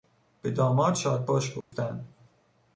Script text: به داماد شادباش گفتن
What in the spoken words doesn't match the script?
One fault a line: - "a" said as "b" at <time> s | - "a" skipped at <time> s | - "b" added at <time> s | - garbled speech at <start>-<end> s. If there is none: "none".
none